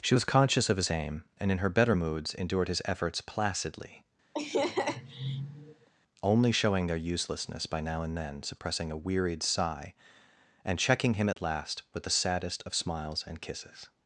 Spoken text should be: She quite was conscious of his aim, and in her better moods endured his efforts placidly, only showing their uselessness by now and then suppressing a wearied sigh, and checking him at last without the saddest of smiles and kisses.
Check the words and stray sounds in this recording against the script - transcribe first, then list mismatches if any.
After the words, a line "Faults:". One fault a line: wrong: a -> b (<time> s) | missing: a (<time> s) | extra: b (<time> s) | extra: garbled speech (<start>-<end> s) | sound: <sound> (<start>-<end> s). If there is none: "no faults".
She was conscious of his aim, and in her better moods endured his efforts placidly, only showing their uselessness by now and then suppressing a wearied sigh, and checking him at last with the saddest of smiles and kisses.
Faults:
missing: quite (0.1 s)
sound: laugh (4.3-5.9 s)
sound: dropout (11.3-11.4 s)
wrong: without -> with (11.9 s)